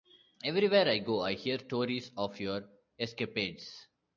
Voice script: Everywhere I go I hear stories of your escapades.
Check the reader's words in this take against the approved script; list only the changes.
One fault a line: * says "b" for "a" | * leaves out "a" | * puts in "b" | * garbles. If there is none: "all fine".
all fine